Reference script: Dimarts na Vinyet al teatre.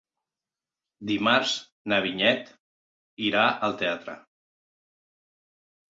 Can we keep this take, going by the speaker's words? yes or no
no